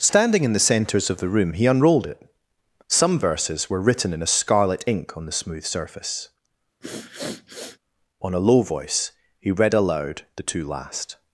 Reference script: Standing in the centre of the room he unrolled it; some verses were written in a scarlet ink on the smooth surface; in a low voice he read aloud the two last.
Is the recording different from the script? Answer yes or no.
yes